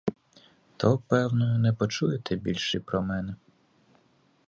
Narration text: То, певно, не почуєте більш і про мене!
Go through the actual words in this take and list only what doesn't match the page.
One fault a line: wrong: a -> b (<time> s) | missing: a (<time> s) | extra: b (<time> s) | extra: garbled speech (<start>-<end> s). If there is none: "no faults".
no faults